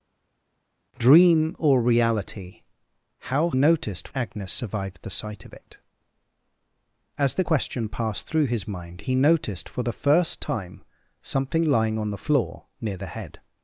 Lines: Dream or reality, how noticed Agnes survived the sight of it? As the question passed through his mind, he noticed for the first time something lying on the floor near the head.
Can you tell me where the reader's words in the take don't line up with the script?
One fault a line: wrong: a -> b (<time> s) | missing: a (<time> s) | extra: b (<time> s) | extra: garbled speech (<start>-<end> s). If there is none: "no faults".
no faults